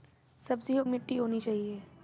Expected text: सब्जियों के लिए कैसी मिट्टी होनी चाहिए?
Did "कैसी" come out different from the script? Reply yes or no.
yes